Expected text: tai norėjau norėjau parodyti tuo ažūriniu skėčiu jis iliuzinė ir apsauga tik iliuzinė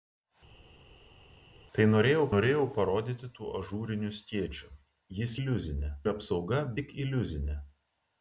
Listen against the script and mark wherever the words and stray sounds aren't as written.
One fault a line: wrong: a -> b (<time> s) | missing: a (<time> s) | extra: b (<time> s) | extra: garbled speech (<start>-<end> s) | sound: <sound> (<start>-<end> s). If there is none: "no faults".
no faults